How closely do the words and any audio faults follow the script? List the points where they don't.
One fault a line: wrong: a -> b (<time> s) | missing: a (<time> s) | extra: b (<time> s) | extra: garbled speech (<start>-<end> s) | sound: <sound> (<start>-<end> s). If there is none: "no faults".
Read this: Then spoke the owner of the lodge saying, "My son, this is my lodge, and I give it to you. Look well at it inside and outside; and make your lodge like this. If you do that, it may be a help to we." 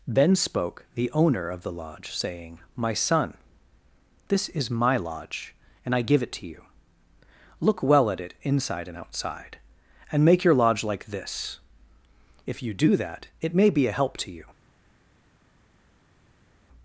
wrong: we -> you (14.3 s)